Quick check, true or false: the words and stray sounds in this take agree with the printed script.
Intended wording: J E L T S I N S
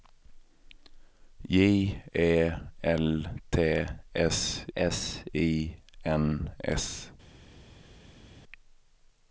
false